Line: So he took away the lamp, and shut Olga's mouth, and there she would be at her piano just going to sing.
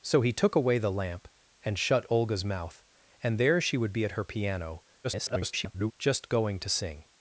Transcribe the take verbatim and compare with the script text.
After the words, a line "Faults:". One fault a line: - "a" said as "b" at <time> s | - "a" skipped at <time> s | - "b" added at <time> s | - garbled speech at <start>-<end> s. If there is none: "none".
So he took away the lamp, and shut Olga's mouth, and there she would be at her piano [garbled] just going to sing.
Faults:
- garbled speech at 5.0-5.9 s